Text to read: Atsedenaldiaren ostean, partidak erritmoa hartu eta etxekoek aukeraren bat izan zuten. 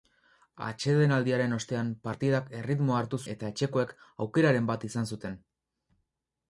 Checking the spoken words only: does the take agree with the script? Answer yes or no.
yes